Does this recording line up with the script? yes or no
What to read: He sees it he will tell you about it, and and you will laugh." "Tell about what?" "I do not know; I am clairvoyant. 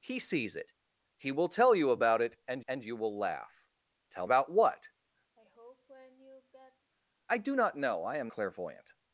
yes